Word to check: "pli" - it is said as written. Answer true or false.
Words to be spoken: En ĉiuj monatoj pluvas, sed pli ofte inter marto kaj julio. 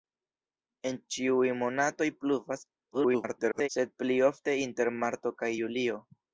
true